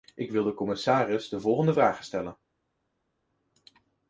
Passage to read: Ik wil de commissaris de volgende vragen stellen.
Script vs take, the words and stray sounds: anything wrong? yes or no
no